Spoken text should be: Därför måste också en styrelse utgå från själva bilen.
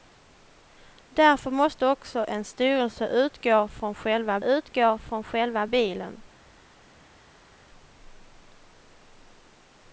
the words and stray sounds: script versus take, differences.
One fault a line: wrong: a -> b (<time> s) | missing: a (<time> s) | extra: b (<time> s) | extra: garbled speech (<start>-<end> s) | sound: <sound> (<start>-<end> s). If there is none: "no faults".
extra: utgå från själva (4.4 s)